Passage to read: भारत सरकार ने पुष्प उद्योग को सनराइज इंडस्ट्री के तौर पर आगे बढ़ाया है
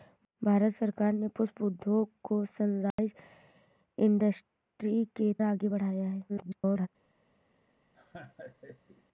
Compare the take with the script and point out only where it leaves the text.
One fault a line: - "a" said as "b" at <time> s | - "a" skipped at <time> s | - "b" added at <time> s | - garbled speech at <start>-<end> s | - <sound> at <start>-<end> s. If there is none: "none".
- dropout at 2.9-3.0 s
- "तौर पर" skipped at 5.3 s
- garbled speech at 6.3-6.9 s
- laugh at 7.9-9.0 s